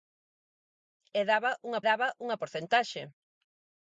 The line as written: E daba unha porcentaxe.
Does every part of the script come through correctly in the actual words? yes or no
no